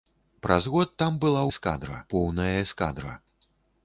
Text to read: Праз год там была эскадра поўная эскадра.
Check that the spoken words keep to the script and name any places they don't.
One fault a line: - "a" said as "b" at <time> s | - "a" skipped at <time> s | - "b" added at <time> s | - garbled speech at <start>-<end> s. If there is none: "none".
none